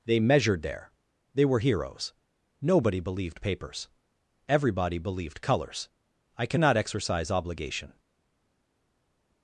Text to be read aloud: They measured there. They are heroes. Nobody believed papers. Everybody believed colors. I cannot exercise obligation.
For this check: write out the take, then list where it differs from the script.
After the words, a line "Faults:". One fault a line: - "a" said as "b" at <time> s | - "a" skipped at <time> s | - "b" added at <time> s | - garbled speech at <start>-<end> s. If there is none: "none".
They measured there. They were heroes. Nobody believed papers. Everybody believed colors. I cannot exercise obligation.
Faults:
- "are" said as "were" at 1.4 s